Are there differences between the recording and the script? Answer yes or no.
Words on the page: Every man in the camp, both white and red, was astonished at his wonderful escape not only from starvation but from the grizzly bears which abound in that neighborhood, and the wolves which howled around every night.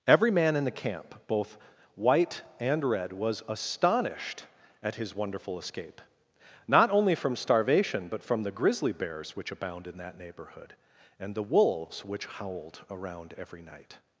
no